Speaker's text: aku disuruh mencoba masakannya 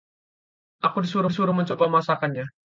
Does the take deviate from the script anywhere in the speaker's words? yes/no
yes